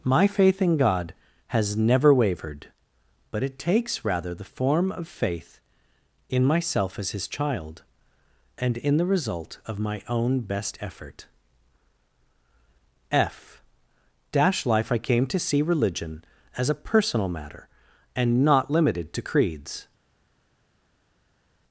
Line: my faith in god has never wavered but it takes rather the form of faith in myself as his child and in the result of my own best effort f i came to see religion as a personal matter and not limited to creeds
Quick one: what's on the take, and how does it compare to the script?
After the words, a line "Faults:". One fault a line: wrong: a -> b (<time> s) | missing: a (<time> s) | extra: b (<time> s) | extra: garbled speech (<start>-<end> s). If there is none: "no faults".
my faith in god has never wavered but it takes rather the form of faith in myself as his child and in the result of my own best effort f dash life i came to see religion as a personal matter and not limited to creeds
Faults:
extra: dash life (14.3 s)